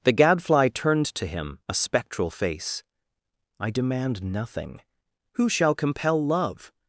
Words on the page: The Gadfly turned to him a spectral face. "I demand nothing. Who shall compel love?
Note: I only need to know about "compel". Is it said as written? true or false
true